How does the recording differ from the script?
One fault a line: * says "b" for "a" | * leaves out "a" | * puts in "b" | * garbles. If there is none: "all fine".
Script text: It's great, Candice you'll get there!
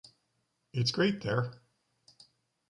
* leaves out "Candice you'll get"